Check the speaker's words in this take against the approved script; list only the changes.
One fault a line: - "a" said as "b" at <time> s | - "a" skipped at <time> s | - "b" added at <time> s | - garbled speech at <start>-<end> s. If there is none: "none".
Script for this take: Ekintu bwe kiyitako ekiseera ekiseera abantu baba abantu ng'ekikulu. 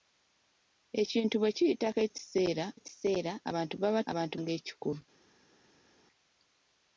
none